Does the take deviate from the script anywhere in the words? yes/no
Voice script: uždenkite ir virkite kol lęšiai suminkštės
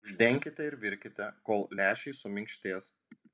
no